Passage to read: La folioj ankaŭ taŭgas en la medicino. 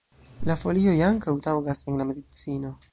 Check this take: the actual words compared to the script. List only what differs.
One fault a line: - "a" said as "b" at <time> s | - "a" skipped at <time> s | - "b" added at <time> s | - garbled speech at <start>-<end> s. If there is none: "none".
none